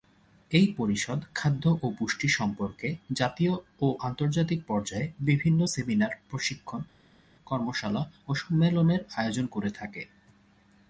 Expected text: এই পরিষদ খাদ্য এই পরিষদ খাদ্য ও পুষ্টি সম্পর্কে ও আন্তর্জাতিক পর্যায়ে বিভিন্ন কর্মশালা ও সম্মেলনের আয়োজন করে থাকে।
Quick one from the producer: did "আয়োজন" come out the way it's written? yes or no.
yes